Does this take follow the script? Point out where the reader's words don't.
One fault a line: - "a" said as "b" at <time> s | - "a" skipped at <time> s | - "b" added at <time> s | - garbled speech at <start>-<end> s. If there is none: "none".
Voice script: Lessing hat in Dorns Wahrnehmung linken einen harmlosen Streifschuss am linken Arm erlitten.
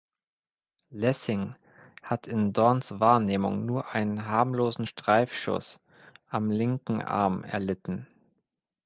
- "linken" said as "nur" at 3.7 s